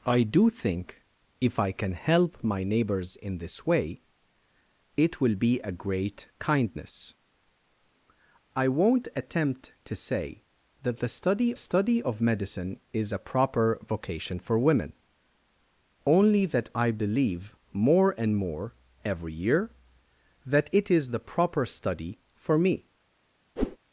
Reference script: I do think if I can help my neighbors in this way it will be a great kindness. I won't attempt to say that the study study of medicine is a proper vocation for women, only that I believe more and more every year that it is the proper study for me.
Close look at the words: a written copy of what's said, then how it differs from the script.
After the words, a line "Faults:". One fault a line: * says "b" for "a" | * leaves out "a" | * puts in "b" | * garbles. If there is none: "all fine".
I do think if I can help my neighbors in this way it will be a great kindness. I won't attempt to say that the study study of medicine is a proper vocation for women, only that I believe more and more every year that it is the proper study for me.
Faults:
all fine